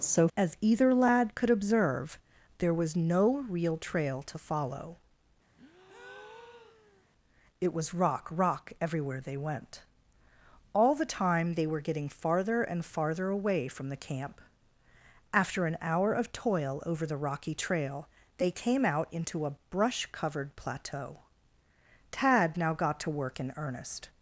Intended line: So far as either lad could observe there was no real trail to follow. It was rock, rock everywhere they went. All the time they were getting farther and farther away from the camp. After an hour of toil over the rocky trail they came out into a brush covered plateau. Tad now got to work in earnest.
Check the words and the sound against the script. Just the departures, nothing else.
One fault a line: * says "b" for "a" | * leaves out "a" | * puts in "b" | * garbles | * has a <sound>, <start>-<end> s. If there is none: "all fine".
* leaves out "far"
* has a breath, 5.6-7.1 s